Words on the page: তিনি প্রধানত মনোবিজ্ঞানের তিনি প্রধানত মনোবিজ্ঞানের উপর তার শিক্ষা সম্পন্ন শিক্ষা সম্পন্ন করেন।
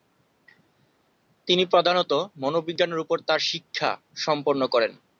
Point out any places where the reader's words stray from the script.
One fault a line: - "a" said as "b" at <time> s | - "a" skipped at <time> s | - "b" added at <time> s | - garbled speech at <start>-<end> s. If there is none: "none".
- "তিনি প্রধানত মনোবিজ্ঞানের" skipped at 3.0 s
- "শিক্ষা সম্পন্ন" skipped at 4.6 s